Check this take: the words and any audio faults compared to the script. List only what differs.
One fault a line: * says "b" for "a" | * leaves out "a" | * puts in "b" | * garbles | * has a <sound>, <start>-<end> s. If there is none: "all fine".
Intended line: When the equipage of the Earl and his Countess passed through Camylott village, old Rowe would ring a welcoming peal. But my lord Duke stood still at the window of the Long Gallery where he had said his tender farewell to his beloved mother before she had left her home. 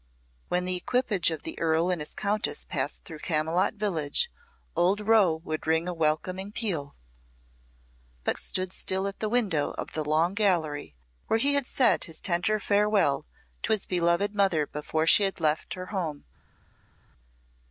* leaves out "my lord Duke"